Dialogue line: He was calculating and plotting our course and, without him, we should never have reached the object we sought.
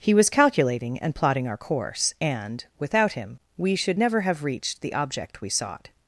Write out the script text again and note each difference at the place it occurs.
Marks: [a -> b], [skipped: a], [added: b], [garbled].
He was calculating and plotting our course and, without him, we should never have reached the object we sought.